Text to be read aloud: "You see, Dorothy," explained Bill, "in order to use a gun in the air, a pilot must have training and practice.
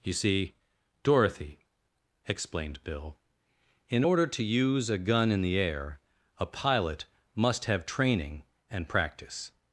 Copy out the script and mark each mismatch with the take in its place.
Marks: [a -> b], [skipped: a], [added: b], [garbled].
"You see, Dorothy," explained Bill, "in order to use a gun in the air, a pilot must have training and practice.